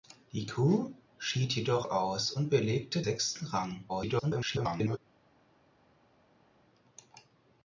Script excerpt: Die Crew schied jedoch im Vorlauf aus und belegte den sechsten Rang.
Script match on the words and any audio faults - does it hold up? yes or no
no